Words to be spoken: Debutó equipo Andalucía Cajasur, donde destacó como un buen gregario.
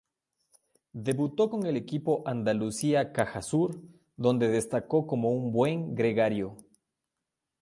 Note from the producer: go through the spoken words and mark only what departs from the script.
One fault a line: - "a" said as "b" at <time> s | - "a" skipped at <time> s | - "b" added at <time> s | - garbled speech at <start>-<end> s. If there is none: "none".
- "con el" added at 1.5 s